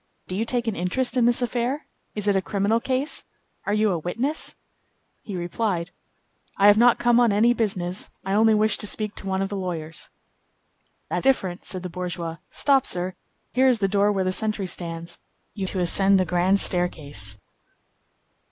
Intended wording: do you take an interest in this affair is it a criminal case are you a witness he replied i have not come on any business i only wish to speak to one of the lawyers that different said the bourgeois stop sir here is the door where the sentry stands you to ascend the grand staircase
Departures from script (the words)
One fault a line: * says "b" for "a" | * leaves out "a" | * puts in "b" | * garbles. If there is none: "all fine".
all fine